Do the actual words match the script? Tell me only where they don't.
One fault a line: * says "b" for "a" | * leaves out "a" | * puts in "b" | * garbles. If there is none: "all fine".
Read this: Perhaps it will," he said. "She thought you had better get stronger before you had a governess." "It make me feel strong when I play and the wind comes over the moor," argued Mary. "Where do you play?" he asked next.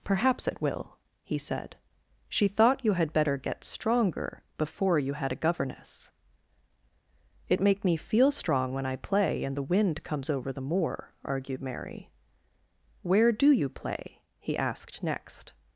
all fine